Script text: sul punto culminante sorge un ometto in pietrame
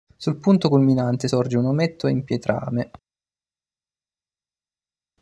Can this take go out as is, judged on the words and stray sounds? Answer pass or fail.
pass